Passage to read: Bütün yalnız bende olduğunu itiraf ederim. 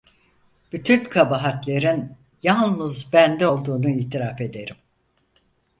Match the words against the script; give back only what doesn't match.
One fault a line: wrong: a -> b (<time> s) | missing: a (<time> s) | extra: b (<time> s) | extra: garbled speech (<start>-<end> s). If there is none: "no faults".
extra: kabahatlerin (1.0 s)